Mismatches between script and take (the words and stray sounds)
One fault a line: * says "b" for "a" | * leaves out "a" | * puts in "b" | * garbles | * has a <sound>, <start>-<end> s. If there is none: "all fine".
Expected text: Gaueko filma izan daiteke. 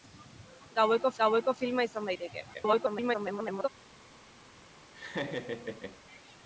* puts in "gaueko"
* garbles
* has a laugh, 4.9-6.0 s